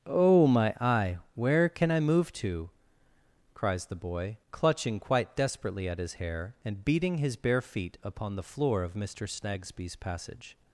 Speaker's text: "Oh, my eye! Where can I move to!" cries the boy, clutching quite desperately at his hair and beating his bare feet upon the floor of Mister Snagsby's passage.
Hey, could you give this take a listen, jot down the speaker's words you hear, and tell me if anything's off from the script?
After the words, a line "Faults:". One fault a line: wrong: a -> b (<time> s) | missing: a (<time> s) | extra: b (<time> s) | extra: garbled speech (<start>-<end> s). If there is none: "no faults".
"Oh, my eye! Where can I move to!" cries the boy, clutching quite desperately at his hair and beating his bare feet upon the floor of Mister Snagsby's passage.
Faults:
no faults